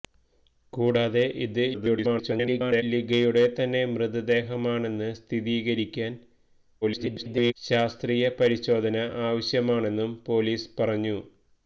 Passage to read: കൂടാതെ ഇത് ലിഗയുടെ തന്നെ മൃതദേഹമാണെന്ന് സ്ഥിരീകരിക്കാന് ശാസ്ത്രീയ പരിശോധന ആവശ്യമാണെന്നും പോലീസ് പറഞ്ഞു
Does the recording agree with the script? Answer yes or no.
no